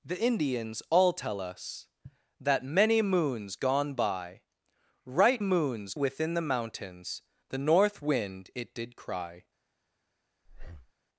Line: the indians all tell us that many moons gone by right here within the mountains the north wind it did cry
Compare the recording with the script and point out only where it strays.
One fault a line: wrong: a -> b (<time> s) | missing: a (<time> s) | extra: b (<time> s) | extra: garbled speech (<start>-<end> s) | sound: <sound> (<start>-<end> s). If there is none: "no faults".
wrong: here -> moons (5.4 s)
sound: breath (10.5-10.9 s)